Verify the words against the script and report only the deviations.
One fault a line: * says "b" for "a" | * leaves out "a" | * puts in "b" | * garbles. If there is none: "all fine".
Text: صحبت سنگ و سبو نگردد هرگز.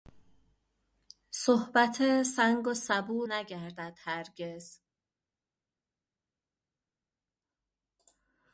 all fine